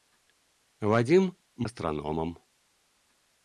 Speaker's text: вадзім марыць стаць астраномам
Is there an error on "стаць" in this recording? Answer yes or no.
yes